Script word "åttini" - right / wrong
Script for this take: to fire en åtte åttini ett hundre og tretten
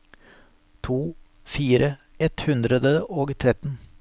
wrong